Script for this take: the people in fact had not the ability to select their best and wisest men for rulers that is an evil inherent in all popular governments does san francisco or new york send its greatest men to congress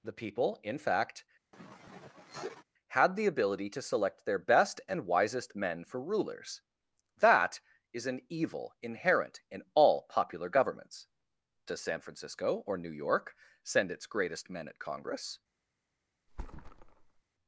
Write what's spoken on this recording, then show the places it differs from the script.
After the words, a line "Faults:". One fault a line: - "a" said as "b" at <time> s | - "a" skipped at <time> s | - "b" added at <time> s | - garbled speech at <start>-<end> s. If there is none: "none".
the people in fact had the ability to select their best and wisest men for rulers that is an evil inherent in all popular governments does san francisco or new york send its greatest men at congress
Faults:
- "not" skipped at 3.1 s
- "to" said as "at" at 14.7 s